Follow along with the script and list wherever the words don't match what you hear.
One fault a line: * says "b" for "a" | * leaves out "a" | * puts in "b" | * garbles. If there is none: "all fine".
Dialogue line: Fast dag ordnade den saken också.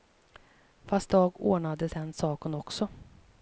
all fine